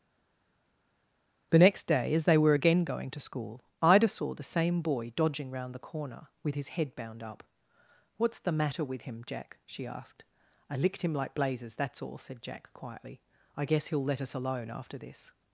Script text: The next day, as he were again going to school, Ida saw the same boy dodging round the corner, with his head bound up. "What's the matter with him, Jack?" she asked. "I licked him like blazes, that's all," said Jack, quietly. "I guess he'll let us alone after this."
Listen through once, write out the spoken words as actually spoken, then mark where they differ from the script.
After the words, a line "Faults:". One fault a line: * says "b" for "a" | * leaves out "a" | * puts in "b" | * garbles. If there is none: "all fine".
The next day, as they were again going to school, Ida saw the same boy dodging round the corner, with his head bound up. "What's the matter with him, Jack?" she asked. "I licked him like blazes, that's all," said Jack, quietly. "I guess he'll let us alone after this."
Faults:
* says "they" for "he"